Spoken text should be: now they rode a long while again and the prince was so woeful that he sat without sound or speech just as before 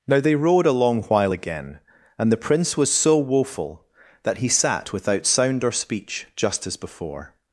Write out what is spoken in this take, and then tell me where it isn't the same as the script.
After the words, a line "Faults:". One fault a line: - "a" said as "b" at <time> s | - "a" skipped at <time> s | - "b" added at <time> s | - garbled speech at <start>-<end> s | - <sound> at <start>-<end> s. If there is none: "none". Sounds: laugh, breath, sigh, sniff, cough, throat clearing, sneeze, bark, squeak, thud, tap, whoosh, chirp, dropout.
now they rode a long while again and the prince was so woeful that he sat without sound or speech just as before
Faults:
none